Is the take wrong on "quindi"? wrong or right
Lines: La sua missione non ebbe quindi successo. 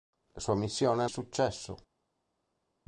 wrong